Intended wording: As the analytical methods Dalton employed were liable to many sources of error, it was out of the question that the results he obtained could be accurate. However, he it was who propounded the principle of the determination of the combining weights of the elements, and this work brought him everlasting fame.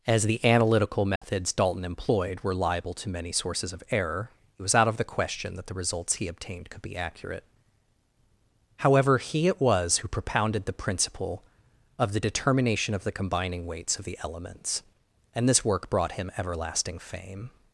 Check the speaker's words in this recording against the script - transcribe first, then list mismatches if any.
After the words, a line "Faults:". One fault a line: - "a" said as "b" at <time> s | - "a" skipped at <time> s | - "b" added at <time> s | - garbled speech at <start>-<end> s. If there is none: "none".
As the analytical methods Dalton employed were liable to many sources of error, it was out of the question that the results he obtained could be accurate. However, he it was who propounded the principle of the determination of the combining weights of the elements, and this work brought him everlasting fame.
Faults:
none